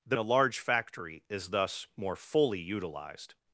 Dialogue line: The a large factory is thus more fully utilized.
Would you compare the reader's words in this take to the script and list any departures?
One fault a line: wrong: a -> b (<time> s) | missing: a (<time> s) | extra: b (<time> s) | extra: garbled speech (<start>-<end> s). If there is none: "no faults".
no faults